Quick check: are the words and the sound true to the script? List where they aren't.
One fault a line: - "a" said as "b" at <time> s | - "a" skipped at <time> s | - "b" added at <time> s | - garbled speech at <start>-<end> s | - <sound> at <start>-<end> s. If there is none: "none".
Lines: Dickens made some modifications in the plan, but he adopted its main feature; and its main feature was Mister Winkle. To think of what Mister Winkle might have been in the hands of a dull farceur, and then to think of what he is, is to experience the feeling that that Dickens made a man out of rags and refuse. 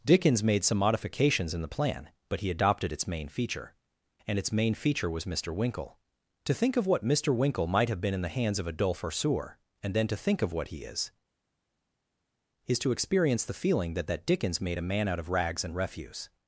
none